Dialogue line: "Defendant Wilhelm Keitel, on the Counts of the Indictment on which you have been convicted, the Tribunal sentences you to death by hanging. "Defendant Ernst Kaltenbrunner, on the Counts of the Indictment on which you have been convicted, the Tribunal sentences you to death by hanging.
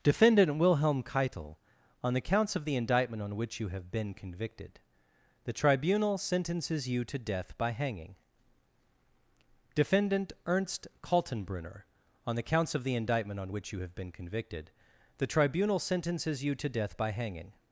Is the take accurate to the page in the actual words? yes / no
yes